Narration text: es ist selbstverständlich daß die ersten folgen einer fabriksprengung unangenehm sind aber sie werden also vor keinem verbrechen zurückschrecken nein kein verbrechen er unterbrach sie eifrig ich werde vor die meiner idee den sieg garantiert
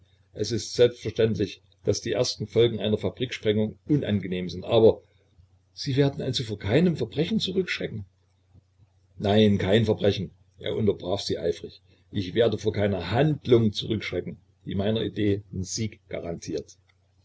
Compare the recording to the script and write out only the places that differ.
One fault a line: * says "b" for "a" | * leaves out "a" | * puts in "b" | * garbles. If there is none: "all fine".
* puts in "keiner handlung zurückschrecken"